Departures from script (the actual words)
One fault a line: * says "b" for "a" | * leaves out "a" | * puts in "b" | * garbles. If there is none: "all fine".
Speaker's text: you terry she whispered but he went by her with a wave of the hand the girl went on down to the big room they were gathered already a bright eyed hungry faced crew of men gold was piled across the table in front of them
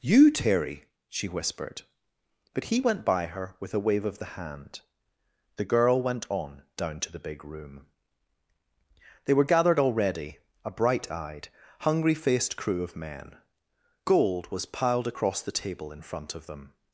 all fine